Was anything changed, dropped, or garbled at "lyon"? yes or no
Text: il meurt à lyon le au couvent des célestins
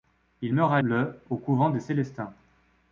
yes